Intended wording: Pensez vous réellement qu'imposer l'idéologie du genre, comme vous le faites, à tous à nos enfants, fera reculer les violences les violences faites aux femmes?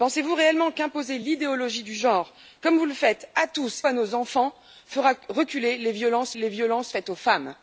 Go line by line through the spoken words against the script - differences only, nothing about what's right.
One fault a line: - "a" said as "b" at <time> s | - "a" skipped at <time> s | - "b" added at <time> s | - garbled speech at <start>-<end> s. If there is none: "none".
none